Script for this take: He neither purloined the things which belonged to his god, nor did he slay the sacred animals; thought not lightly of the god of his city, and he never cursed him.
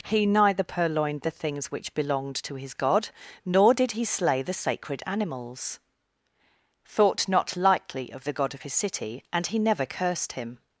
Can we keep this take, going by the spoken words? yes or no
yes